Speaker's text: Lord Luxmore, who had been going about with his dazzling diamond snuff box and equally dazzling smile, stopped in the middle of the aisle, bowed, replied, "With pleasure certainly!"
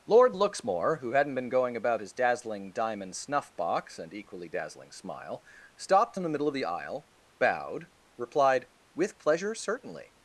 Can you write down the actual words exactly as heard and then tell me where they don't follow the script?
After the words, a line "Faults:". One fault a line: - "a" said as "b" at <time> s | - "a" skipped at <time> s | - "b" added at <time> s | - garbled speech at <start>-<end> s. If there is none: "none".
Lord Luxmore, who hadn't been going about his dazzling diamond snuff box and equally dazzling smile, stopped in the middle of the aisle, bowed, replied, "With pleasure certainly!"
Faults:
- "had" said as "hadn't" at 1.1 s
- "with" skipped at 2.0 s